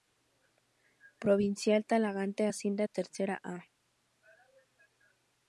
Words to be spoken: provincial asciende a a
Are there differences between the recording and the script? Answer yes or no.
yes